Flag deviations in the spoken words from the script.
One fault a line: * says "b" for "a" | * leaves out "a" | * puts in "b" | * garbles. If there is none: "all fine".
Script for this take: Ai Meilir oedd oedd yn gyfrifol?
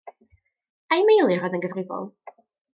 * leaves out "oedd"